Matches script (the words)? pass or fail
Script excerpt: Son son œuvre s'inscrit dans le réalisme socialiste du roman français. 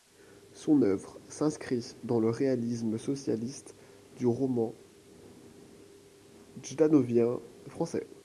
fail